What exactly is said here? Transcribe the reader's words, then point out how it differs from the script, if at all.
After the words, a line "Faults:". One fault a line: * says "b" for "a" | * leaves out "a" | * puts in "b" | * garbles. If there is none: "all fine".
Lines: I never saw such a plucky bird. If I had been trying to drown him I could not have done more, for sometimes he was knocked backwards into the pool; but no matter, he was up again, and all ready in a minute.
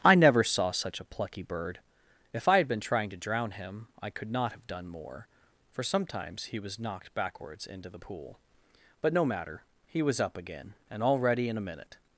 I never saw such a plucky bird. If I had been trying to drown him I could not have done more, for sometimes he was knocked backwards into the pool; but no matter, he was up again, and all ready in a minute.
Faults:
all fine